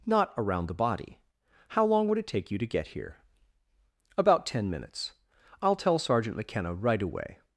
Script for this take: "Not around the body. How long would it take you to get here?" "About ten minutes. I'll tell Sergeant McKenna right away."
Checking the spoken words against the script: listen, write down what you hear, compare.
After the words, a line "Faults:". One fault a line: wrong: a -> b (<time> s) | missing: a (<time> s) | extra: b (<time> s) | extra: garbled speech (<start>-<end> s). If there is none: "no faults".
"Not around the body. How long would it take you to get here?" "About ten minutes. I'll tell Sergeant McKenna right away."
Faults:
no faults